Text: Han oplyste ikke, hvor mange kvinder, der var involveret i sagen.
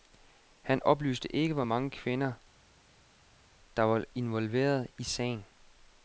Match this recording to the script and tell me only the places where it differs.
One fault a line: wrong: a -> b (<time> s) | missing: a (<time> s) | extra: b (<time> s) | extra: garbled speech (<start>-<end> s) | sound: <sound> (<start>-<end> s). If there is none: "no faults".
no faults